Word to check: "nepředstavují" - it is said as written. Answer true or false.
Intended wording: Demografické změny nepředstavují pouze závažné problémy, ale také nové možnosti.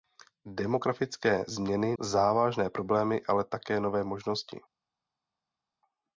false